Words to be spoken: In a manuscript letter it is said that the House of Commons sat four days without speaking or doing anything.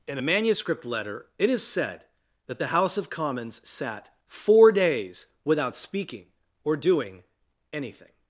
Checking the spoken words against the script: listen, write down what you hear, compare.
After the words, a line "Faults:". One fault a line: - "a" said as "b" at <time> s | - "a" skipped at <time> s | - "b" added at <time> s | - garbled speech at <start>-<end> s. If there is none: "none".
In a manuscript letter it is said that the House of Commons sat four days without speaking or doing anything.
Faults:
none